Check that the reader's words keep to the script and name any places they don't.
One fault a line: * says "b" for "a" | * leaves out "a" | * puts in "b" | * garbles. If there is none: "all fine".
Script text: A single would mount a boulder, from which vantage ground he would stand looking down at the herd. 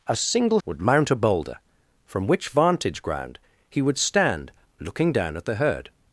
all fine